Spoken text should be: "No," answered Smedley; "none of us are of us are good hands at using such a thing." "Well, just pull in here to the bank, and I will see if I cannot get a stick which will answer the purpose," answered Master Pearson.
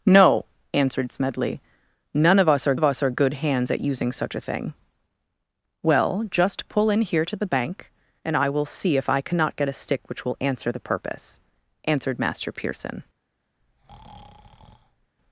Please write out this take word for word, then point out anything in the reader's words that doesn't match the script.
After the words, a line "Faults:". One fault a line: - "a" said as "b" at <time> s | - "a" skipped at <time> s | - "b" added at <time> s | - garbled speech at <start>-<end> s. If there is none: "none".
"No," answered Smedley; "none of us are of us are good hands at using such a thing." "Well, just pull in here to the bank, and I will see if I cannot get a stick which will answer the purpose," answered Master Pearson.
Faults:
none